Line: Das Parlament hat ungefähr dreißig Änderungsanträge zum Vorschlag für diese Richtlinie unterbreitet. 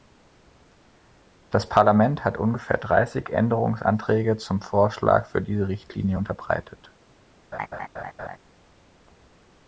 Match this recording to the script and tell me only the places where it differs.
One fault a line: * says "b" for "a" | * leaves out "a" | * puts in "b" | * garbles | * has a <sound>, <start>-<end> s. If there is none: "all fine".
* has a laugh, 7.5-8.4 s